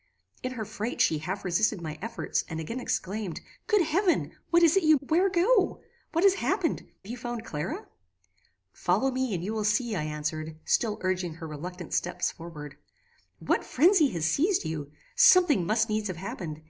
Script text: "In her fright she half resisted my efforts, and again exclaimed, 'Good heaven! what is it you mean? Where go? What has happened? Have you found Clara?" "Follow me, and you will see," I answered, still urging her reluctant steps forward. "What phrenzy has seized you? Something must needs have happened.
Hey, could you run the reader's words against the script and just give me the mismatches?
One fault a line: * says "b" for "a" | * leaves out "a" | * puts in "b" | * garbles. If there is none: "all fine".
* leaves out "mean"
* leaves out "Have"